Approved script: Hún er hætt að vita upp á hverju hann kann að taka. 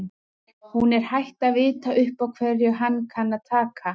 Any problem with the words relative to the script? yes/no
no